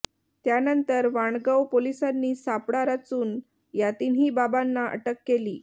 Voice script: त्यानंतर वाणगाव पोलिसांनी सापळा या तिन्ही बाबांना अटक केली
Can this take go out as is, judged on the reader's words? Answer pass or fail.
fail